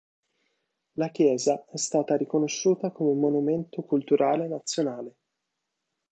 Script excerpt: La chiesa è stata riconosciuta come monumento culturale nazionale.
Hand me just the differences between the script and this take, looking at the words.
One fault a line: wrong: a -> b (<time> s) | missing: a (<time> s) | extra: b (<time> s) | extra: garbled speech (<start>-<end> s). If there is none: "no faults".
no faults